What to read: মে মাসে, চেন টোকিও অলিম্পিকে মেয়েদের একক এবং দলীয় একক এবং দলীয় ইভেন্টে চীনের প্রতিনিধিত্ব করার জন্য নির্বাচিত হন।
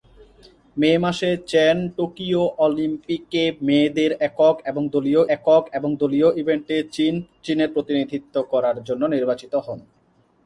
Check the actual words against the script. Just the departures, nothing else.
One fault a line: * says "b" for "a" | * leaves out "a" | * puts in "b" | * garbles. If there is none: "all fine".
all fine